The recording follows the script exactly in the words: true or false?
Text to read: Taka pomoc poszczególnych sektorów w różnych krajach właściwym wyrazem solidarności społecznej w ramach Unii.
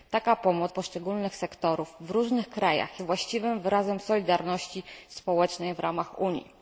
true